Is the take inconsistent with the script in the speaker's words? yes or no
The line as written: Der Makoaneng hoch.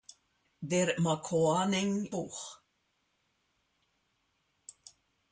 no